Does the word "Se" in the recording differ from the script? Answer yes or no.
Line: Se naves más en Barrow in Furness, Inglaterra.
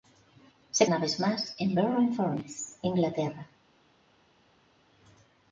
no